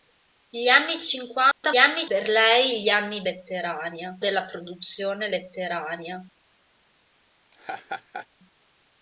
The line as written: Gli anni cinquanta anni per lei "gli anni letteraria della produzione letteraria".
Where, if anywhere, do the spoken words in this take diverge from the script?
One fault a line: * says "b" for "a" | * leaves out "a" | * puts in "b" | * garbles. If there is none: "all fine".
all fine